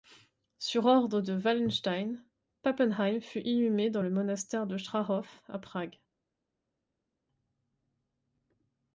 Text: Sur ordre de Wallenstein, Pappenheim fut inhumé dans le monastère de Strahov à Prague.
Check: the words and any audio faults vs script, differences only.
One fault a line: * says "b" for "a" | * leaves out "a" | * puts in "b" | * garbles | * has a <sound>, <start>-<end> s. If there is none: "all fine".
all fine